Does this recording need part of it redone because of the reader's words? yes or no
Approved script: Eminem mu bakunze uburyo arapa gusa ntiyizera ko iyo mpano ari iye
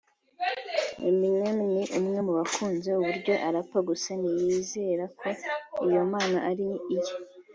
yes